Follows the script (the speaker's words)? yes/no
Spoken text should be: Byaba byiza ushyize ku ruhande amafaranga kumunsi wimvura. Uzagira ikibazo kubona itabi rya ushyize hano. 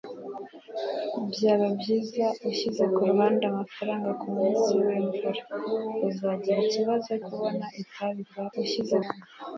yes